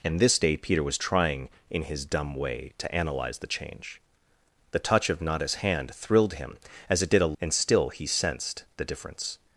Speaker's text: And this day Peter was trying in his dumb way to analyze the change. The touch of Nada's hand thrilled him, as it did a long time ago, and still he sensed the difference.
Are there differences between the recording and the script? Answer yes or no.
yes